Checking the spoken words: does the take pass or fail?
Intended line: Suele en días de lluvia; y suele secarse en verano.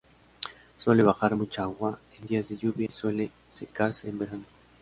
fail